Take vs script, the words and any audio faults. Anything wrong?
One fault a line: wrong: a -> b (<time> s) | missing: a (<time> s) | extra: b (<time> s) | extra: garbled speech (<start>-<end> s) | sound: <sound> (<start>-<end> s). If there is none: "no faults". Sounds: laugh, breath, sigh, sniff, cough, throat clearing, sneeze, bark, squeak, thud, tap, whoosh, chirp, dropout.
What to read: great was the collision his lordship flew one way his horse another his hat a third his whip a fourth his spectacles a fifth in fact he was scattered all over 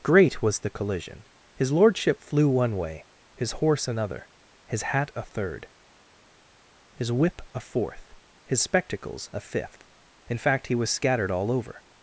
no faults